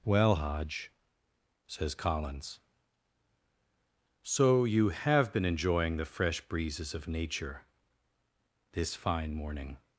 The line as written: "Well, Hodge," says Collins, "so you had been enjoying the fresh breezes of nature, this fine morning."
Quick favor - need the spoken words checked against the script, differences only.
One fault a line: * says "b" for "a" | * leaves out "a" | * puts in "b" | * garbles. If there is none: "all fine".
* says "have" for "had"